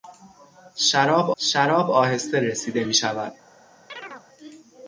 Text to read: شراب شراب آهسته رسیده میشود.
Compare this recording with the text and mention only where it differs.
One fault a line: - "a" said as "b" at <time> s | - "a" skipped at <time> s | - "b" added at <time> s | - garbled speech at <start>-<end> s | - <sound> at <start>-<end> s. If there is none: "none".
- chirp at 3.9-4.3 s